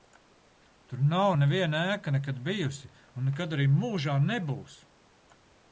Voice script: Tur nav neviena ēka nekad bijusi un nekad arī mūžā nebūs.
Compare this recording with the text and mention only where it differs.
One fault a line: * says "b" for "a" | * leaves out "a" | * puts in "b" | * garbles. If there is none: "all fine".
all fine